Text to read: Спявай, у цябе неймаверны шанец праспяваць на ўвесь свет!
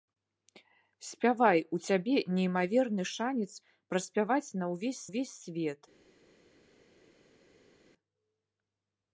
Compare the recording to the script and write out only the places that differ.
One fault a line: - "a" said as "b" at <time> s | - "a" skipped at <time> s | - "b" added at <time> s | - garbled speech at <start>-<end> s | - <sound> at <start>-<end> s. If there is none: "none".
- "ўвесь" added at 5.1 s